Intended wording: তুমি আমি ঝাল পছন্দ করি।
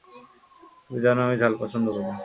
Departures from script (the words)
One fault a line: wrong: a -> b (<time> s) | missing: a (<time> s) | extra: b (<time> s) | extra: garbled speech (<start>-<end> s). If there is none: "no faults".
extra: জানো (1.1 s)